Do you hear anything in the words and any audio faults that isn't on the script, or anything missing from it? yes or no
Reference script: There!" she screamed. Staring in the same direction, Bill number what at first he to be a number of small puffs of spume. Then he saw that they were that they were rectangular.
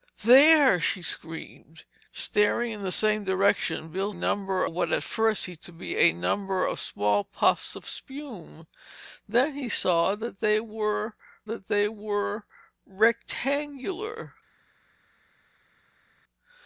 no